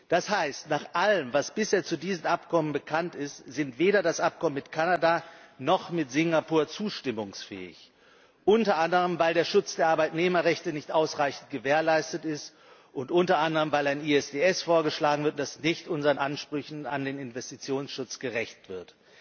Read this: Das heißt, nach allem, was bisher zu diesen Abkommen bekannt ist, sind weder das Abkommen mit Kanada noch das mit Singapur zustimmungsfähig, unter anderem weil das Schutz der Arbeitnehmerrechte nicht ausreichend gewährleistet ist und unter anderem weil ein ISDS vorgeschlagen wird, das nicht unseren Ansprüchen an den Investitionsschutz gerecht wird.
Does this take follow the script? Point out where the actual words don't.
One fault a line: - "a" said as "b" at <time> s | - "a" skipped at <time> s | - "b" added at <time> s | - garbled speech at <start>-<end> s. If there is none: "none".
- "das" said as "der" at 9.3 s